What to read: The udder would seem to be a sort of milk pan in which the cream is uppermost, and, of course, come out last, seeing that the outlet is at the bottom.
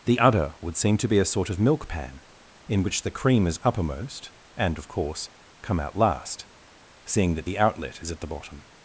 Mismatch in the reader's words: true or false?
false